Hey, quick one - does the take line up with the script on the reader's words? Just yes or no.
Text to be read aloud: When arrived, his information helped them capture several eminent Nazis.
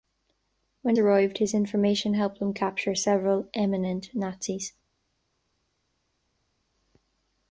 yes